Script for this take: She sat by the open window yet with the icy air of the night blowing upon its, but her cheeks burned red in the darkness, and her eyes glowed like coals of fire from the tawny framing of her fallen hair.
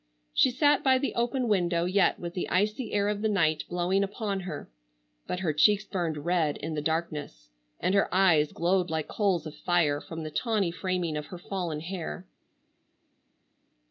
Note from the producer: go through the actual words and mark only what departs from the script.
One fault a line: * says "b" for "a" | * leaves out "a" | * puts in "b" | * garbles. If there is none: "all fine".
* says "her" for "its"